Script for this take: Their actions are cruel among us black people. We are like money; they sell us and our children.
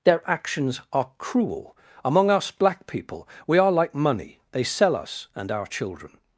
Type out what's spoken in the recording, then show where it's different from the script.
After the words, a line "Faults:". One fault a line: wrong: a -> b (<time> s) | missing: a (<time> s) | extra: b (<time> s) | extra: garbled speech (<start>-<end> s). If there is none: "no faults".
Their actions are cruel among us black people. We are like money; they sell us and our children.
Faults:
no faults